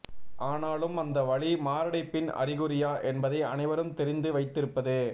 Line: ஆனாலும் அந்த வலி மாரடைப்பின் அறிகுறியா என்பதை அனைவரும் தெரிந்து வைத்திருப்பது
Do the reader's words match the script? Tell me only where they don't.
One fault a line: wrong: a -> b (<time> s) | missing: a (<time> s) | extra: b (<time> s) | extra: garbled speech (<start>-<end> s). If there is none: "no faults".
no faults